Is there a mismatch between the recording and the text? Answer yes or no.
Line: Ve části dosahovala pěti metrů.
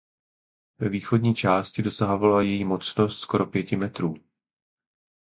yes